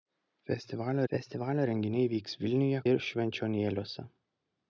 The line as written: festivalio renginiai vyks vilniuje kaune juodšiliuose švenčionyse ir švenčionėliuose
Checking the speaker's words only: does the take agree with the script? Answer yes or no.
no